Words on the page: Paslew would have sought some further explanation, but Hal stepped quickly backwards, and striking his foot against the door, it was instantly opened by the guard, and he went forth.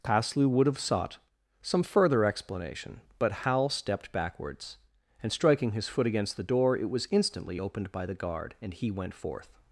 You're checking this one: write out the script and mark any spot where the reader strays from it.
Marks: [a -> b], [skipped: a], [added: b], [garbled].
Paslew would have sought some further explanation, but Hal stepped [skipped: quickly] backwards, and striking his foot against the door, it was instantly opened by the guard, and he went forth.